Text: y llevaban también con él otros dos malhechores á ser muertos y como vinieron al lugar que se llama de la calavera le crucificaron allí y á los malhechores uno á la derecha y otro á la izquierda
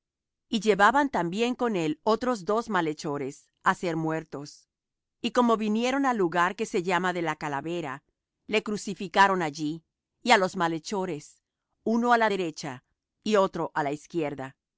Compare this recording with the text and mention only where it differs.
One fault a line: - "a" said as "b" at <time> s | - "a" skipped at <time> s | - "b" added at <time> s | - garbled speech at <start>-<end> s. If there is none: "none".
none